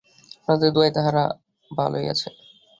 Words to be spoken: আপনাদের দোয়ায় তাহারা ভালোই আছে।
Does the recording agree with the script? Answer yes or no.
yes